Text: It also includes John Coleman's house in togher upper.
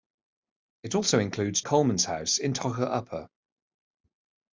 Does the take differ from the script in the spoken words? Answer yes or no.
yes